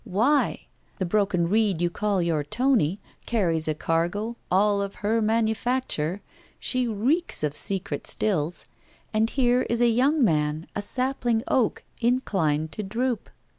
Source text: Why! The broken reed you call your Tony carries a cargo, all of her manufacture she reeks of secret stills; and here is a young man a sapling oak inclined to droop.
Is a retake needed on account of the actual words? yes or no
no